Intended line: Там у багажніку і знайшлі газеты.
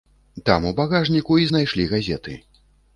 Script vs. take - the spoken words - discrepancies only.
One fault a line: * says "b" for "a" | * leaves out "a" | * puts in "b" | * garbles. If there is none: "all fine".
all fine